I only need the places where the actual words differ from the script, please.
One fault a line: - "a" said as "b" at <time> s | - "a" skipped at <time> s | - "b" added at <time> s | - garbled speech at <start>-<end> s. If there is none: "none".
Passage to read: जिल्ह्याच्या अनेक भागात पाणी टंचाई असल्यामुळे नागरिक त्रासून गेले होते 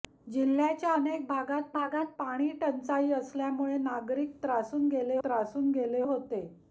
- "भागात" added at 1.7 s
- "त्रासून गेले" added at 5.2 s